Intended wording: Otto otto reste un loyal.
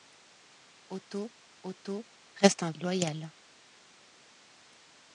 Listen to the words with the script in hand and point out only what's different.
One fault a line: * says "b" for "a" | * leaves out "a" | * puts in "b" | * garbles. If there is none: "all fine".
all fine